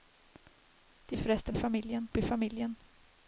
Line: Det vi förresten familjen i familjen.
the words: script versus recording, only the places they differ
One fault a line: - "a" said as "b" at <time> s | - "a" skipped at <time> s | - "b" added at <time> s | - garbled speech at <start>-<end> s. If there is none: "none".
none